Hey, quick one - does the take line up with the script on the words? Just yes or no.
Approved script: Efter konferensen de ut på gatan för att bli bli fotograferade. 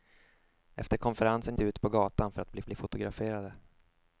yes